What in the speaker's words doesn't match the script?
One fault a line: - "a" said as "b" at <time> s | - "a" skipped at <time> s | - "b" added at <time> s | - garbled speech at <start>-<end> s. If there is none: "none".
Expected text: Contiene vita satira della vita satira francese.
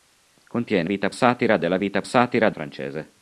none